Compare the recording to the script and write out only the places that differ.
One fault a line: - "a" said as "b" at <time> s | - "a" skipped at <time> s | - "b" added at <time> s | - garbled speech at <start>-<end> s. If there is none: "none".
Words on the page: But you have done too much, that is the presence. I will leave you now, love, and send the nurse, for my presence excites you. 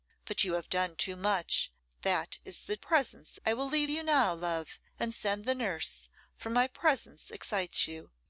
none